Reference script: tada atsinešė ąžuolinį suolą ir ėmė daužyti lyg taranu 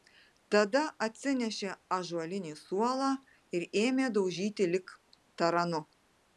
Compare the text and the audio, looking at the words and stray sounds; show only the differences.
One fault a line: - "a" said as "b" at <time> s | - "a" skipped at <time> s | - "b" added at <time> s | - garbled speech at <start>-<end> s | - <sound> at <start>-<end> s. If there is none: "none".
none